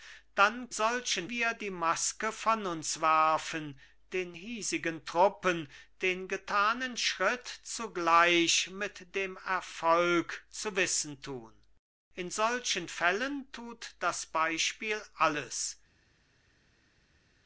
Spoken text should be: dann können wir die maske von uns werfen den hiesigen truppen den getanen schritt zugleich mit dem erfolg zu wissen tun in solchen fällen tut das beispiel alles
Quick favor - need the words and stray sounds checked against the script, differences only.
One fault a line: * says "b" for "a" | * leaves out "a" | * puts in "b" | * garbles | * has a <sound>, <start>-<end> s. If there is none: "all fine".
* says "solchen" for "können"